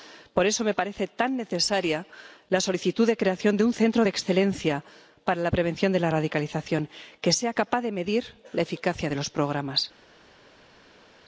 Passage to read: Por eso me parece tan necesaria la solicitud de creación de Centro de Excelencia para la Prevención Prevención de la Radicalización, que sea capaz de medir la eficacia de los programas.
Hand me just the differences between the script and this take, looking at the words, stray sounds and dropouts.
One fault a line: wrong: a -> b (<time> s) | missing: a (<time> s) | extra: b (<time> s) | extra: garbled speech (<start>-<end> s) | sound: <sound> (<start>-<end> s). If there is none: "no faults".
extra: un (3.6 s)
missing: Prevención (5.9 s)